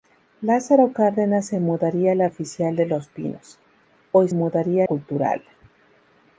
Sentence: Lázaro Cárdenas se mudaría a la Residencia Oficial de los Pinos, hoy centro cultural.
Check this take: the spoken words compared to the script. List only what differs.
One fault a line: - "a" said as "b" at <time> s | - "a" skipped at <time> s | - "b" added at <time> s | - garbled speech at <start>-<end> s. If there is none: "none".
- "Residencia" skipped at 2.3 s
- "centro" said as "mudaría" at 4.3 s